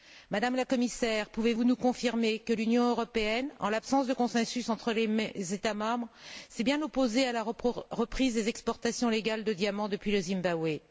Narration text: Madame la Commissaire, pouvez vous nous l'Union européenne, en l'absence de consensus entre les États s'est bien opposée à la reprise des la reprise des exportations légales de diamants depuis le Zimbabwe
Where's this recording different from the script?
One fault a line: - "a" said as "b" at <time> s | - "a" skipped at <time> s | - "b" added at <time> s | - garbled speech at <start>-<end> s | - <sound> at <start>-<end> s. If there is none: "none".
- "confirmer que" added at 1.8 s
- "membres" added at 5.7 s
- "la reprise des" skipped at 8.5 s